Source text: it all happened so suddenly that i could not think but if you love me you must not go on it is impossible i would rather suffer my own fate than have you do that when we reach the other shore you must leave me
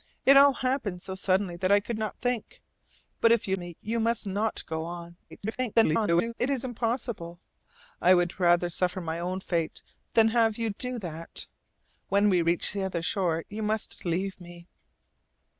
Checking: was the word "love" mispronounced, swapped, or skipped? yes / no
yes